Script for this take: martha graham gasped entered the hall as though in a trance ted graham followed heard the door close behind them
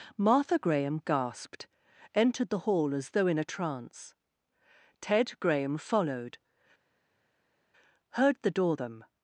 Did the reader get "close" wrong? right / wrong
wrong